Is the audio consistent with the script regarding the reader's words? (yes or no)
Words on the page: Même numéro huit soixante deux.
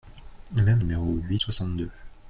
yes